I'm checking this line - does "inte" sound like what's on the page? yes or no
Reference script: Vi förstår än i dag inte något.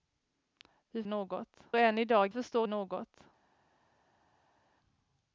no